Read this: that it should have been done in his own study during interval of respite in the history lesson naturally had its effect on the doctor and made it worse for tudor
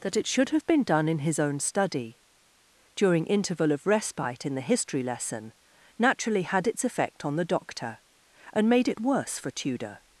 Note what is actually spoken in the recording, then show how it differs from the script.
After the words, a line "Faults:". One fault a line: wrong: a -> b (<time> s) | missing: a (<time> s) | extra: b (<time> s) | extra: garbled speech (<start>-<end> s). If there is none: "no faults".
that it should have been done in his own study during interval of respite in the history lesson naturally had its effect on the doctor and made it worse for tudor
Faults:
no faults